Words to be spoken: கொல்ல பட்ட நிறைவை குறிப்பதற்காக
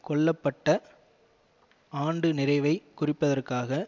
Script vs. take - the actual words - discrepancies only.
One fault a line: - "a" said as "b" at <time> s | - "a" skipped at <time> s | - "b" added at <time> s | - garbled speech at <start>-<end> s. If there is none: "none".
- "ஆண்டு" added at 2.0 s